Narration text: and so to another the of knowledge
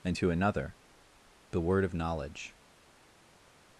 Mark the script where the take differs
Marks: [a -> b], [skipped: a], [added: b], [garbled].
and [skipped: so] to another the [added: word] of knowledge